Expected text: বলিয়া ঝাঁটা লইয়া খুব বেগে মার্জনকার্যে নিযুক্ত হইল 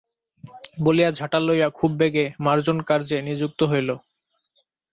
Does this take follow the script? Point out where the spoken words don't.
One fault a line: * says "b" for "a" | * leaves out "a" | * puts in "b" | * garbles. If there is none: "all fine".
all fine